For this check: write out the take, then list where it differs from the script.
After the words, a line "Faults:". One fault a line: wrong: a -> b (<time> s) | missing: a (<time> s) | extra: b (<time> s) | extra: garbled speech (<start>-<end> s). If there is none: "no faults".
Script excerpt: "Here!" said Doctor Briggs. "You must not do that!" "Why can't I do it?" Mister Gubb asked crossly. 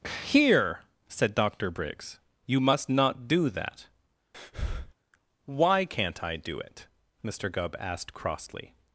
"Here!" said Doctor Briggs. "You must not do that!" "Why can't I do it?" Mister Gubb asked crossly.
Faults:
no faults